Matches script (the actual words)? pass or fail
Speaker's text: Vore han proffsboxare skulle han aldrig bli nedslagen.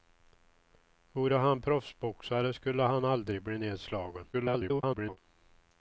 fail